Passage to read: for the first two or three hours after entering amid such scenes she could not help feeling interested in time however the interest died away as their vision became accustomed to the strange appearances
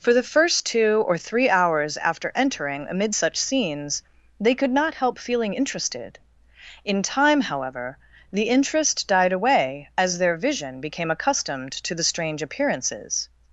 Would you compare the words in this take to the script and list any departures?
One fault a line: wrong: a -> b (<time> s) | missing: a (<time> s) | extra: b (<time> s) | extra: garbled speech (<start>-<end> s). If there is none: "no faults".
wrong: she -> they (4.4 s)